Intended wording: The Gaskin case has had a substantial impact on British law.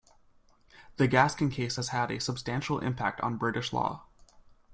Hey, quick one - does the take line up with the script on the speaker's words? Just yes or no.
yes